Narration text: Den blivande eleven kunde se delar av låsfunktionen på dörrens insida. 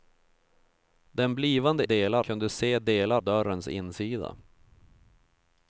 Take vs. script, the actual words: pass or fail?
fail